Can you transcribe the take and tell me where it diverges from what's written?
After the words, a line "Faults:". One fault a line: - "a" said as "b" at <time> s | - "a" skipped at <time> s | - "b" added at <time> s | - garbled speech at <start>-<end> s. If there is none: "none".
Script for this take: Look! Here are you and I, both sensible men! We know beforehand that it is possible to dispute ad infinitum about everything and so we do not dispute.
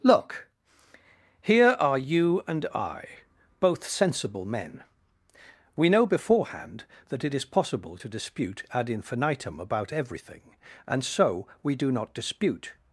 Look! Here are you and I, both sensible men! We know beforehand that it is possible to dispute ad infinitum about everything and so we do not dispute.
Faults:
none